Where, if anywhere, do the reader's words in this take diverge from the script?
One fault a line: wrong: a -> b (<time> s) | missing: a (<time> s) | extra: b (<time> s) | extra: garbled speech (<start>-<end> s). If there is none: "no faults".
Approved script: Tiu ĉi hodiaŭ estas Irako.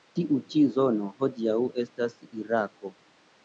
extra: zono (0.8 s)